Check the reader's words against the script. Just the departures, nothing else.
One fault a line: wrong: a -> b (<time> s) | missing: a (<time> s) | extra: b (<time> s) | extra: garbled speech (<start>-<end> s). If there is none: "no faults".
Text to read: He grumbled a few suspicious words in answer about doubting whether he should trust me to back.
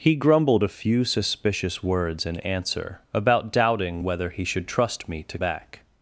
no faults